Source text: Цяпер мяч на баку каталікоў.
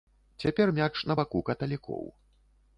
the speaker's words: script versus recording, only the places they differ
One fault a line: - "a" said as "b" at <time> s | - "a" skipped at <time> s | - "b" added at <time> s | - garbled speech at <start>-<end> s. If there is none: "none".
none